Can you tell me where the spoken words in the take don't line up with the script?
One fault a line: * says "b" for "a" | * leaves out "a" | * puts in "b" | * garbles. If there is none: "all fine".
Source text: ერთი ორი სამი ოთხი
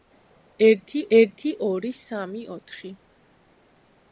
* puts in "ერთი"